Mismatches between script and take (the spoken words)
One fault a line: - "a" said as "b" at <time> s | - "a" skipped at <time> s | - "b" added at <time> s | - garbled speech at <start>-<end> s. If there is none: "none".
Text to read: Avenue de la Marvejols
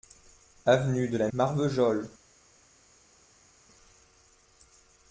none